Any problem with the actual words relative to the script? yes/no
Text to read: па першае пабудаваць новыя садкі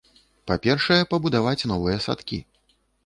no